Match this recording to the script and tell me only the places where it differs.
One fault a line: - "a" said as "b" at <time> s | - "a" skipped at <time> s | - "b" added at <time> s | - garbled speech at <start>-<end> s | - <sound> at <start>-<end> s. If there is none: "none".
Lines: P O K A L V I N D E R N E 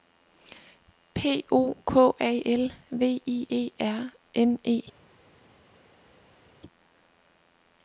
- "N D" skipped at 3.5 s